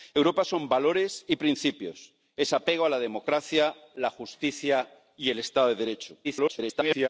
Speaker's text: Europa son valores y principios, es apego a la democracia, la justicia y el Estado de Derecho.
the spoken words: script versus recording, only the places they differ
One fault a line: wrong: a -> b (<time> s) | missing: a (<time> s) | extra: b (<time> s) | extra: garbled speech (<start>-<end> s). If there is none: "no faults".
extra: garbled speech (6.2-7.1 s)